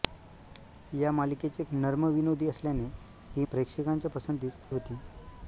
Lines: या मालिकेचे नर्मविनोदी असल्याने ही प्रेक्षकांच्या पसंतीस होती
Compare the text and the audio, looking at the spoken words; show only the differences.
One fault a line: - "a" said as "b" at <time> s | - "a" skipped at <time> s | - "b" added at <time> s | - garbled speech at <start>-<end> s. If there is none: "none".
none